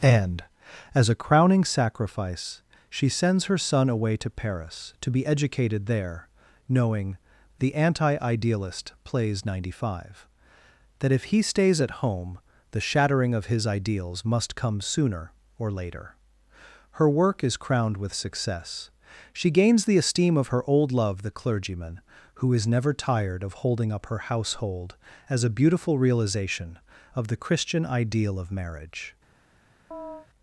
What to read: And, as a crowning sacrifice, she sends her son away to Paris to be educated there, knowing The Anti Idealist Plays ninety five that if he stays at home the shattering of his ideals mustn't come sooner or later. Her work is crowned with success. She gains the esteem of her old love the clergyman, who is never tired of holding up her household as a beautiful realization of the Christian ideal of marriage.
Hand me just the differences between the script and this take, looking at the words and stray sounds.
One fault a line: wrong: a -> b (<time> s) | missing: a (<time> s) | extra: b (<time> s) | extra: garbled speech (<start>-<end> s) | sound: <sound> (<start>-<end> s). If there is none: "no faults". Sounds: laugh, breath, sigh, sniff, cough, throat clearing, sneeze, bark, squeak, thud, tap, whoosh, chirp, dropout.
wrong: mustn't -> must (14.3 s)
sound: chirp (29.9-30.3 s)